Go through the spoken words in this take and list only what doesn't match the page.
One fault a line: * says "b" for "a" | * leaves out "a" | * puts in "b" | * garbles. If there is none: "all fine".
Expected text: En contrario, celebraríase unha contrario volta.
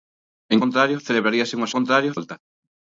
all fine